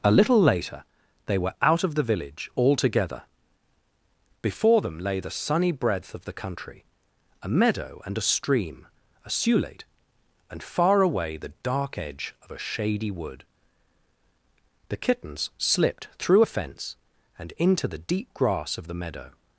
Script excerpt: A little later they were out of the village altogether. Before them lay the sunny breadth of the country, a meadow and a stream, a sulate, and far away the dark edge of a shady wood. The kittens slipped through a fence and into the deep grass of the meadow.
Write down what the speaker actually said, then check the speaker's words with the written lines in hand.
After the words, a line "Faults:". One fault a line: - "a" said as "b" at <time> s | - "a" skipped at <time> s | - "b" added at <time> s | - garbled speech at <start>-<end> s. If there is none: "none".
A little later they were out of the village altogether. Before them lay the sunny breadth of the country, a meadow and a stream, a sulate, and far away the dark edge of a shady wood. The kittens slipped through a fence and into the deep grass of the meadow.
Faults:
none